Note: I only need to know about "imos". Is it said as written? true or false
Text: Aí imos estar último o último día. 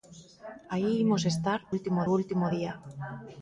true